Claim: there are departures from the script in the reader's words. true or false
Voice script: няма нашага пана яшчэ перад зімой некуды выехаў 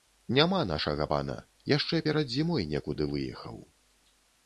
false